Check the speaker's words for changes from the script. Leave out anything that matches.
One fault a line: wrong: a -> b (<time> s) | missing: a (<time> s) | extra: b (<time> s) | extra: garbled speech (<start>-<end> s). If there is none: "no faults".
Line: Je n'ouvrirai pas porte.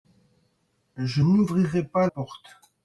no faults